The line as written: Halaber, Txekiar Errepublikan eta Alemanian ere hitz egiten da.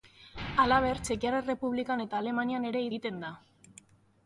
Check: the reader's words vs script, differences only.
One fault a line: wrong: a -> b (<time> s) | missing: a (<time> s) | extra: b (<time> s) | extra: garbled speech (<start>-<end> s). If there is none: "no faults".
missing: hitz (2.9 s)